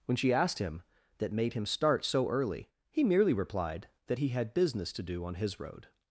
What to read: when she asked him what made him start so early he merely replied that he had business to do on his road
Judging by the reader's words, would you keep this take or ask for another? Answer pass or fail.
fail